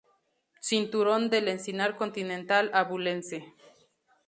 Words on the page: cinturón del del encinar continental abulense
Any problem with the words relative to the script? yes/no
yes